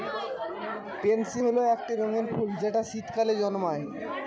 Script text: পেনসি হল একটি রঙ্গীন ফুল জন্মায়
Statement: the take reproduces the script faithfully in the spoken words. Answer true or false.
false